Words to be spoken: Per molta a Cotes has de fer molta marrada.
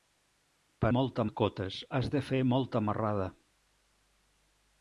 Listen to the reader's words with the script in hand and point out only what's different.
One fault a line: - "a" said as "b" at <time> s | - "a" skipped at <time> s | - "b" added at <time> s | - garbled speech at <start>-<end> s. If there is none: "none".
none